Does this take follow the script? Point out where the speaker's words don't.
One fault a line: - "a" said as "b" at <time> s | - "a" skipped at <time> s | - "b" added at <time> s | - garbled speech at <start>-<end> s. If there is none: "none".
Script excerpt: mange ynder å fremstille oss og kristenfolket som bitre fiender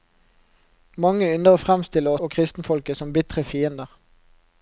- "oss" skipped at 2.1 s